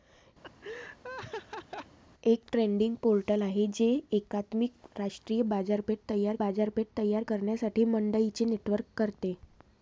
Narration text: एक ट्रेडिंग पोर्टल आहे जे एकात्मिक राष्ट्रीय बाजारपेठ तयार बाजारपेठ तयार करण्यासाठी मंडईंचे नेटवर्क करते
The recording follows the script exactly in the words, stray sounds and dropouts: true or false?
false